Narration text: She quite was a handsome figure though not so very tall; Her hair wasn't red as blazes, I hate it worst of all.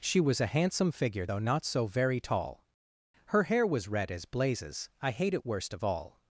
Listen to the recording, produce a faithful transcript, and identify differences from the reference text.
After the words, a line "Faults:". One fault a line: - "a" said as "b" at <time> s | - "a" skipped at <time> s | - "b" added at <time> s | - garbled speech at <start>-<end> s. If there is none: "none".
She was a handsome figure though not so very tall; Her hair was red as blazes, I hate it worst of all.
Faults:
- "quite" skipped at 0.2 s
- "wasn't" said as "was" at 3.7 s